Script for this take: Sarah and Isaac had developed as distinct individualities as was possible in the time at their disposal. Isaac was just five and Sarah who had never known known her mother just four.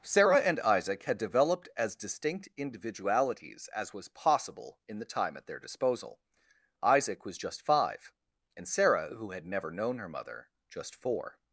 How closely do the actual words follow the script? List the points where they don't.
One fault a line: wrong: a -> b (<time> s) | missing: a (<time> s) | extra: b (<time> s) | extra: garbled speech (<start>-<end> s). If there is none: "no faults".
missing: known (10.0 s)